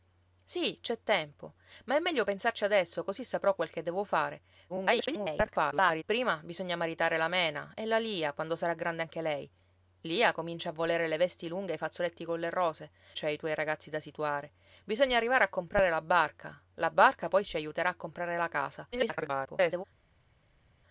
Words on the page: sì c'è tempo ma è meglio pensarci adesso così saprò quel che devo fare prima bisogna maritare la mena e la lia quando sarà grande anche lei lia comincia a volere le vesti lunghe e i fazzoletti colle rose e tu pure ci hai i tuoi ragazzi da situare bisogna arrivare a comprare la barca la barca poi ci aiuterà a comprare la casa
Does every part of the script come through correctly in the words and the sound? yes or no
no